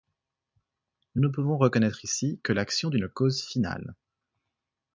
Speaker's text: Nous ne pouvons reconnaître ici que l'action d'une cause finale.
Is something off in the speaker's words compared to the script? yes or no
no